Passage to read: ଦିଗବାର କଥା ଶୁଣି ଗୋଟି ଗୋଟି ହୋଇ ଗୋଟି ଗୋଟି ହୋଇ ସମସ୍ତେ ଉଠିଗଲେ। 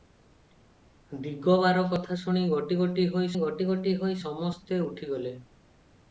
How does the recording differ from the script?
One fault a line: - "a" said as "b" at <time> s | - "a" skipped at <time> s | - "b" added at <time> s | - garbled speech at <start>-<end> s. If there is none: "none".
none